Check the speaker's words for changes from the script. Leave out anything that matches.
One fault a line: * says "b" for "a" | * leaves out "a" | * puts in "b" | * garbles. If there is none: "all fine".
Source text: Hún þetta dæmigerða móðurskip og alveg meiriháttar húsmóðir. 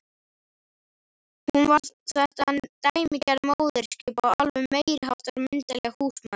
* puts in "var"
* puts in "myndarleg"